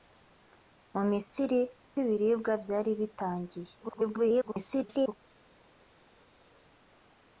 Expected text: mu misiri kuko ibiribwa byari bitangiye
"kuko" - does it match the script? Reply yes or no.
no